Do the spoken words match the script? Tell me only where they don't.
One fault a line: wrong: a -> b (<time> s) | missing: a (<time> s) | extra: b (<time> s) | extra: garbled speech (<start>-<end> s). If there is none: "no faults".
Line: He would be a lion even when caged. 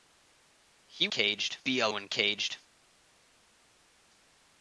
wrong: would -> caged (1.1 s)
missing: lion even (1.9 s)